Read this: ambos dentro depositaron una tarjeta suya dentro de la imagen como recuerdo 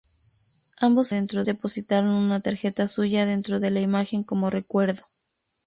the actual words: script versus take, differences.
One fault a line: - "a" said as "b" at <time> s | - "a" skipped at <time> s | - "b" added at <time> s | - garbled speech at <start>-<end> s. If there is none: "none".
none